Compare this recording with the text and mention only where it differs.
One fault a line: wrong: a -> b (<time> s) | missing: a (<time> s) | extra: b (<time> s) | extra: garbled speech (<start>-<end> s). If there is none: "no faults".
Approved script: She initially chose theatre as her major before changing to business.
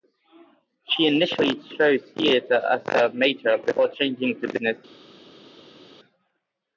no faults